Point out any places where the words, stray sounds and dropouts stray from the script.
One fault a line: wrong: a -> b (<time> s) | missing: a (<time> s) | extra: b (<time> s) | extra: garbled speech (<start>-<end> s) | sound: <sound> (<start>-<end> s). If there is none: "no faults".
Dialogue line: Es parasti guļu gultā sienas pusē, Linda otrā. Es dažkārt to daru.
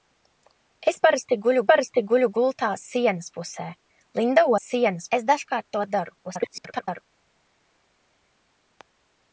extra: parasti guļu (1.7 s)
wrong: otrā -> sienas (4.6 s)
extra: garbled speech (6.2-7.0 s)